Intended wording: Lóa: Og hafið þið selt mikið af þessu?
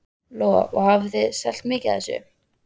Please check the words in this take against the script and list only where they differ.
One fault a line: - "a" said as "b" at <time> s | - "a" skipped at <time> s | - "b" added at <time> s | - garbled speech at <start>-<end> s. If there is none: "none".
none